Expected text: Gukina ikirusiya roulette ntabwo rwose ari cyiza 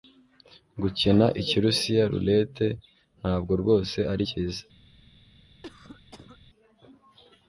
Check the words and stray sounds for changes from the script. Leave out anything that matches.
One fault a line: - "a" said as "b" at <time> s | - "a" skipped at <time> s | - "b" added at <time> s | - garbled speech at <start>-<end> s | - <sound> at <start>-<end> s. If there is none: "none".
- cough at 5.6-6.4 s